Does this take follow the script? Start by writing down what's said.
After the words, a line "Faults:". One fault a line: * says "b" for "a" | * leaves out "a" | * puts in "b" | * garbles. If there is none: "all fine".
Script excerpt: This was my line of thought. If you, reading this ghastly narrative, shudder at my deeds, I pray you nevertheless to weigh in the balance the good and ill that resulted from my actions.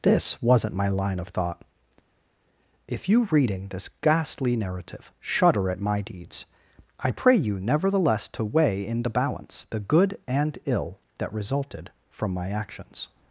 This wasn't my line of thought. If you, reading this ghastly narrative, shudder at my deeds, I pray you nevertheless to weigh in the balance the good and ill that resulted from my actions.
Faults:
* says "wasn't" for "was"